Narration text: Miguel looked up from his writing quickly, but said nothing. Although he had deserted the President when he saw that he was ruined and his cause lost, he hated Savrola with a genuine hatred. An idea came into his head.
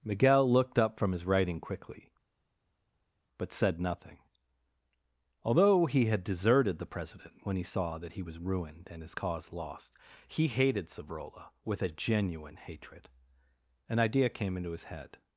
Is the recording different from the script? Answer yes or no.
no